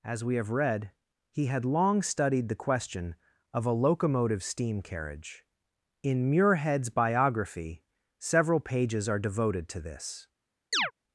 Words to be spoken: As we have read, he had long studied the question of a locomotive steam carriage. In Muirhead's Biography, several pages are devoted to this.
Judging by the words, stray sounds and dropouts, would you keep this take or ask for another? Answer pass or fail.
fail